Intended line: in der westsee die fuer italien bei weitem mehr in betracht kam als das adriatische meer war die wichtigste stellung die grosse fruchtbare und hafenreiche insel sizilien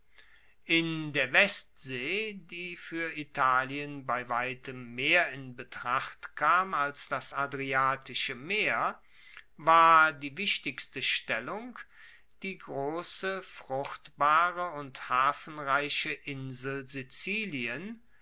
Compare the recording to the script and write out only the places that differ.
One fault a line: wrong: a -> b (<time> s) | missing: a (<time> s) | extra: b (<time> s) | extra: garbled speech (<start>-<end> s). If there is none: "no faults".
no faults